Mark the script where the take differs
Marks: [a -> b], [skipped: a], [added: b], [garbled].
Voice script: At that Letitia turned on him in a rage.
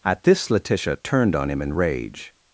At [that -> this] Letitia turned on him in [skipped: a] rage.